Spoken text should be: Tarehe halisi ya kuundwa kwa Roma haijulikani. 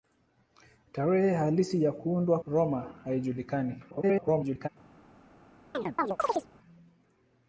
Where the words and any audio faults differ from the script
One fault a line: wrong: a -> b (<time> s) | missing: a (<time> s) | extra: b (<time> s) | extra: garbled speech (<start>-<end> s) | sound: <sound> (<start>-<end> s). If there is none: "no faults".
missing: kwa (2.4 s)
extra: garbled speech (3.9-4.7 s)
sound: chirp (5.7-6.5 s)